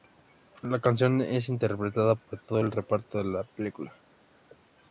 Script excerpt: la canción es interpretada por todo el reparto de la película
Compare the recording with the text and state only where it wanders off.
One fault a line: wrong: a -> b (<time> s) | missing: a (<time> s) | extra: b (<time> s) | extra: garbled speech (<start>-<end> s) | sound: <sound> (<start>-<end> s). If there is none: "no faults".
no faults